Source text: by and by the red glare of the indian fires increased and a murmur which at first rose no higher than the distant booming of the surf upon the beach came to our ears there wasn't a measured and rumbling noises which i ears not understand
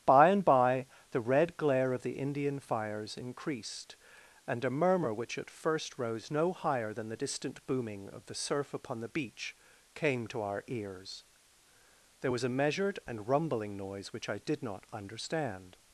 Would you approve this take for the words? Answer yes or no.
no